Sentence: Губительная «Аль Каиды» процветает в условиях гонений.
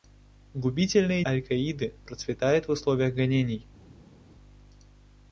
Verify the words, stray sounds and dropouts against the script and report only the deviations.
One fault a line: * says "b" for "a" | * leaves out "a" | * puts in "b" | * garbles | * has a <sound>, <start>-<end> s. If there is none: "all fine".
all fine